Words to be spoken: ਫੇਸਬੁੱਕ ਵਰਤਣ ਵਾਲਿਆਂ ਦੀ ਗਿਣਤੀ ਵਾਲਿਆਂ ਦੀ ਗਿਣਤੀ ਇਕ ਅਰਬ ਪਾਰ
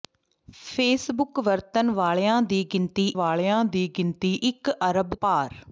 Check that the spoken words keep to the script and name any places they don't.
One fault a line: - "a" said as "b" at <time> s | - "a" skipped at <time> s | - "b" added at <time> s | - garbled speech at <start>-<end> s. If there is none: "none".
none